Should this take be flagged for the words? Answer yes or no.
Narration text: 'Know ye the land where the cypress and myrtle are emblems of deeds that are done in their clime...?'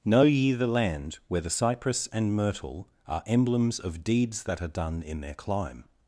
no